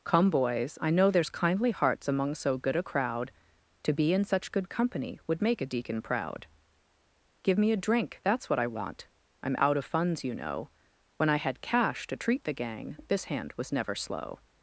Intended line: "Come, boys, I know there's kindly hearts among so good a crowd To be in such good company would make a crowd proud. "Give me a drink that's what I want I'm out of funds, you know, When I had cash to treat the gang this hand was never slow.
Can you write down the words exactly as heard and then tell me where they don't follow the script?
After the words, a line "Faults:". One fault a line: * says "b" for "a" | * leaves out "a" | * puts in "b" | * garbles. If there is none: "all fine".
"Come, boys, I know there's kindly hearts among so good a crowd To be in such good company would make a deacon proud. "Give me a drink that's what I want I'm out of funds, you know, When I had cash to treat the gang this hand was never slow.
Faults:
* says "deacon" for "crowd"